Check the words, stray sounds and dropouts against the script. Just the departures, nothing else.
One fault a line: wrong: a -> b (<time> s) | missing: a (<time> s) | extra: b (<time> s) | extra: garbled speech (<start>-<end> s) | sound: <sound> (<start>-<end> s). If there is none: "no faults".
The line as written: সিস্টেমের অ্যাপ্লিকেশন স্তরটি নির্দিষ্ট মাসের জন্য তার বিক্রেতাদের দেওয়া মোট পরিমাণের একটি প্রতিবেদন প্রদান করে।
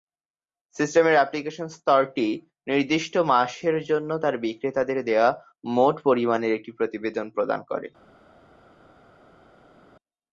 no faults